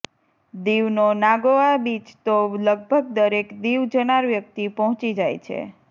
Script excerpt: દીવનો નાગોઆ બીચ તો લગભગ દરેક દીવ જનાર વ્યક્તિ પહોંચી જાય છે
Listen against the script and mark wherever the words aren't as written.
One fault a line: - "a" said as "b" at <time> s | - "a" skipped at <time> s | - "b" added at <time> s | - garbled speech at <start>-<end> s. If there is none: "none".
none